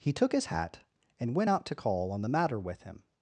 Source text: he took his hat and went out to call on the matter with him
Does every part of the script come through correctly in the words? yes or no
yes